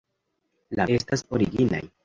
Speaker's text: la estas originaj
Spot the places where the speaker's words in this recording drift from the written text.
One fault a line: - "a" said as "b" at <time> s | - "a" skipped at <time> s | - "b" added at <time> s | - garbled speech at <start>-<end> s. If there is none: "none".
none